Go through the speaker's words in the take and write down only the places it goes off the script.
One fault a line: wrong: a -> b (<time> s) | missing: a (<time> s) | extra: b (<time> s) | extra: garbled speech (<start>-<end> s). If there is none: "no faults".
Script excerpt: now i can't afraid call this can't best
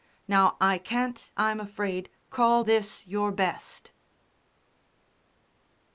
extra: i'm (1.4 s)
wrong: can't -> your (3.1 s)